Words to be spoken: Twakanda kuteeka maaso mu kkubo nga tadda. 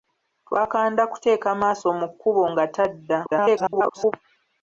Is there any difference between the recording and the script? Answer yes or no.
yes